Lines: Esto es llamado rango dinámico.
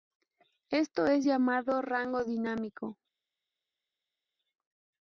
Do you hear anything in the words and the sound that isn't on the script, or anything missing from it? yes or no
no